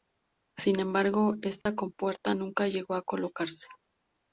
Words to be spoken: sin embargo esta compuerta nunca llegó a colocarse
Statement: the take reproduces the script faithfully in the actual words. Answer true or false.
true